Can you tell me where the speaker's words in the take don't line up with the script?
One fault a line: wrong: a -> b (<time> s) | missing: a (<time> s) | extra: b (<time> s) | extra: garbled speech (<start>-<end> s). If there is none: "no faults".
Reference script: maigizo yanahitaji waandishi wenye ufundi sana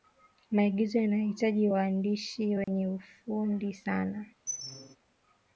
no faults